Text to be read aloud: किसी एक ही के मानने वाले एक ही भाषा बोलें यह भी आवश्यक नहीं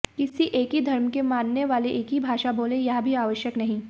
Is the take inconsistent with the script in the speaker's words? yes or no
yes